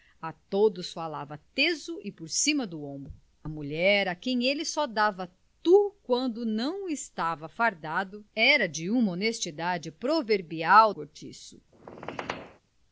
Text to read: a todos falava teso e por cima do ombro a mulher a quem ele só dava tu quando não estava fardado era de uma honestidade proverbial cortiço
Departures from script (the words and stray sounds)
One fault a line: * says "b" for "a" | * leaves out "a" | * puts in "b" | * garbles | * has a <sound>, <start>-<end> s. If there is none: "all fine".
* has a squeak, 11.7-12.6 s